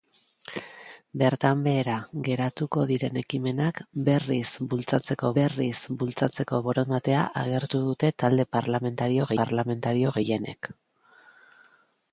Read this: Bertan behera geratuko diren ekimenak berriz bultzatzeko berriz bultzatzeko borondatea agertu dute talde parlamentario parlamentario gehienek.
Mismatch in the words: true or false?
false